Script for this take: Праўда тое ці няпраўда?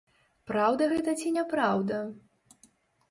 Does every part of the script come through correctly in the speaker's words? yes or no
no